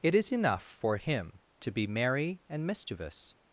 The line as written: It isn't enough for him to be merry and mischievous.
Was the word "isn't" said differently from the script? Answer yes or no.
yes